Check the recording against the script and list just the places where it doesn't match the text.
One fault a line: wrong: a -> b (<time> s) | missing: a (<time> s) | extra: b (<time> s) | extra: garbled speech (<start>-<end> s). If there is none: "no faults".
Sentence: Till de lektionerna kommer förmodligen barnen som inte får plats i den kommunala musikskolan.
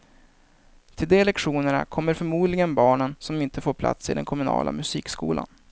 no faults